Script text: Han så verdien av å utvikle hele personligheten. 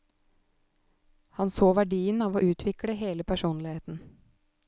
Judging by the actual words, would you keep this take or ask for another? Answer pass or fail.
pass